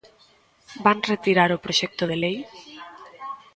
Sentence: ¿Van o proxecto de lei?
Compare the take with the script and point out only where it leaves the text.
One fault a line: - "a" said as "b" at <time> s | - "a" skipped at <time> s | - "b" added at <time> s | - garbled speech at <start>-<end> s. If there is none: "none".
- "retirar" added at 1.1 s